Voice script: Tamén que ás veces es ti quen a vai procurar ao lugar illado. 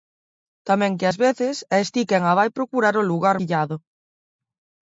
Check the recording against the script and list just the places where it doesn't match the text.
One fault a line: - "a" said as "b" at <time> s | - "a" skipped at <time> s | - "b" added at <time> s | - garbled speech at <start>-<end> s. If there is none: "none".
none